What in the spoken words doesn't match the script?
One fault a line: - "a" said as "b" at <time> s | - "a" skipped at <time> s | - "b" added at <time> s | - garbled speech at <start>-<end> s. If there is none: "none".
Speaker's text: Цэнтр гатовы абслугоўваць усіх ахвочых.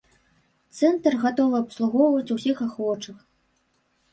none